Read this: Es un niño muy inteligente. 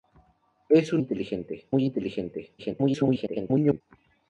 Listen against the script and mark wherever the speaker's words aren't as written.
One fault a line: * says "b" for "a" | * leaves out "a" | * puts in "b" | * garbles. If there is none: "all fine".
* says "inteligente" for "niño"
* garbles